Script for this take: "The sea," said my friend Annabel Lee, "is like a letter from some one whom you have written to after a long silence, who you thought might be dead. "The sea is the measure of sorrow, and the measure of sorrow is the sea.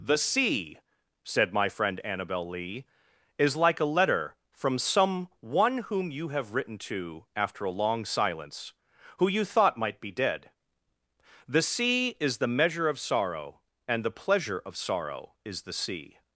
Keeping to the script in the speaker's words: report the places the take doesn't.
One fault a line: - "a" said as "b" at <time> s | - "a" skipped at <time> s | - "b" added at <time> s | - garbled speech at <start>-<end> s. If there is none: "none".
- "measure" said as "pleasure" at 14.1 s